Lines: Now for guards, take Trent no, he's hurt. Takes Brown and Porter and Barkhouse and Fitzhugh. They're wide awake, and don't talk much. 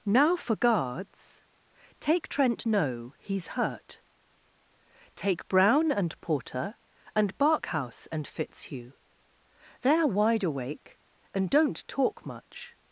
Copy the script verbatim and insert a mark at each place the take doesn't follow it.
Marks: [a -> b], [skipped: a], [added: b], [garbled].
Now for guards, take Trent no, he's hurt. [Takes -> Take] Brown and Porter and Barkhouse and Fitzhugh. They're wide awake, and don't talk much.